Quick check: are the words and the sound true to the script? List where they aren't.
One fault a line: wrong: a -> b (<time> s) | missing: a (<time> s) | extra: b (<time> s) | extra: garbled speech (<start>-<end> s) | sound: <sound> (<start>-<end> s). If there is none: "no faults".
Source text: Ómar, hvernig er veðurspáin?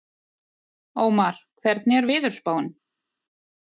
no faults